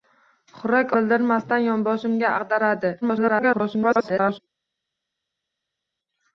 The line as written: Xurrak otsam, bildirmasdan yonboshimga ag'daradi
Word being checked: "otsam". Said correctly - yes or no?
no